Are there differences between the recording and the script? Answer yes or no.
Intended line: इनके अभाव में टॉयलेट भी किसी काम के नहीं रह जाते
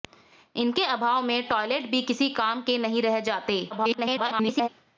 yes